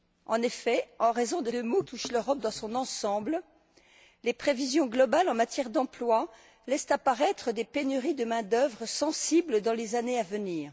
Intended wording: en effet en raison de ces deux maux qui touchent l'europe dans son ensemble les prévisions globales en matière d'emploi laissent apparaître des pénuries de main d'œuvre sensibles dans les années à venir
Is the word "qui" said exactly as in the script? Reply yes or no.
no